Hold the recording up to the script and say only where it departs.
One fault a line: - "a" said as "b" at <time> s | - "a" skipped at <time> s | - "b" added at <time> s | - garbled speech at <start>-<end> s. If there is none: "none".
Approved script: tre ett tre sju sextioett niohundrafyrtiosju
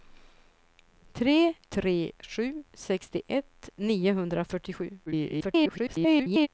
- "ett" skipped at 1.5 s
- garbled speech at 5.1-6.5 s